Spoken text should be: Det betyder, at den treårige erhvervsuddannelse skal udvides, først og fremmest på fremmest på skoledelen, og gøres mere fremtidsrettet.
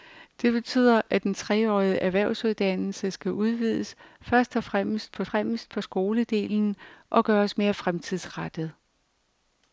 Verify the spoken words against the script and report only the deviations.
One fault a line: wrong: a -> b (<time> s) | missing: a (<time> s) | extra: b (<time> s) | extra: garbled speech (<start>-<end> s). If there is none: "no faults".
no faults